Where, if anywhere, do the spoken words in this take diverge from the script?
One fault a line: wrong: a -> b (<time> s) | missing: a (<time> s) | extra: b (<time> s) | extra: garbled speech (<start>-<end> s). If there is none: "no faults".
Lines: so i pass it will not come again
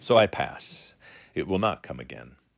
no faults